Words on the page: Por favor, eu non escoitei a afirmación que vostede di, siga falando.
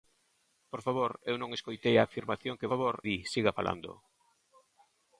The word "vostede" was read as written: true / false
false